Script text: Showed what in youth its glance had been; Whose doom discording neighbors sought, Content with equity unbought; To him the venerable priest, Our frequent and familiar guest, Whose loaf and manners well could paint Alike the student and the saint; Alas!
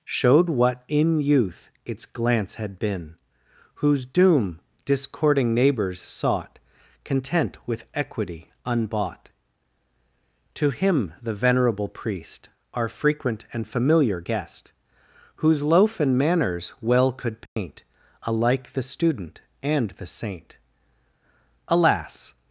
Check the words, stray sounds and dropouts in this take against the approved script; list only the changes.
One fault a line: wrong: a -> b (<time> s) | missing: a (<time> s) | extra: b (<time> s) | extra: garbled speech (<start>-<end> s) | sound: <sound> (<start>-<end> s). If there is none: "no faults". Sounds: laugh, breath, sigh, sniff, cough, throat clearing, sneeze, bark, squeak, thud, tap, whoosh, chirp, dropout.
sound: dropout (17.5-17.6 s)